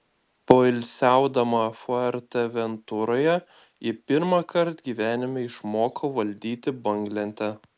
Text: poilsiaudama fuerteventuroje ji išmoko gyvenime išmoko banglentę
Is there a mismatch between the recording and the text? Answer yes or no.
yes